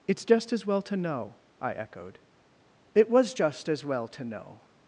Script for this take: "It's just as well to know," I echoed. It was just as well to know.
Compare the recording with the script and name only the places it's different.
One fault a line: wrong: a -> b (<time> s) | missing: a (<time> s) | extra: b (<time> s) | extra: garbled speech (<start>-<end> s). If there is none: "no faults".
no faults